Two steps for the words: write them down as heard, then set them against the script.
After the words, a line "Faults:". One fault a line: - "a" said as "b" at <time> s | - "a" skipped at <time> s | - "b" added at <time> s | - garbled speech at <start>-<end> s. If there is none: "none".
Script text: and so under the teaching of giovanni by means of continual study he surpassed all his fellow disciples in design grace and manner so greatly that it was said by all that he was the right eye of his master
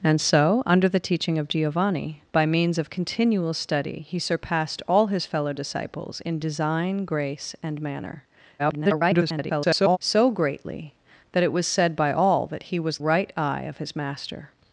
and so under the teaching of giovanni by means of continual study he surpassed all his fellow disciples in design grace and manner [garbled] so greatly that it was said by all that he was right eye of his master
Faults:
- garbled speech at 8.6-10.0 s
- "the" skipped at 13.0 s